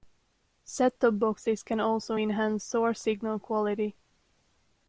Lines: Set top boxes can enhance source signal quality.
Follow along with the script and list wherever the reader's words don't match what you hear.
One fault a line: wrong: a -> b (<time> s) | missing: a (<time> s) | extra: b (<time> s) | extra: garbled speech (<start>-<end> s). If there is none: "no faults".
extra: also (1.8 s)